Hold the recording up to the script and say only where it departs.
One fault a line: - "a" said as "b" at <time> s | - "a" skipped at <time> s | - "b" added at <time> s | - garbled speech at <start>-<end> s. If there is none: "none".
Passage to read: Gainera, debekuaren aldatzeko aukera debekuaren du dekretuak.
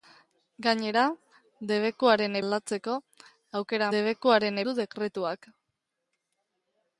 none